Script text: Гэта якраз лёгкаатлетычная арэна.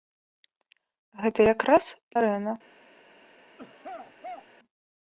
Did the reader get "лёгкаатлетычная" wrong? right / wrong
wrong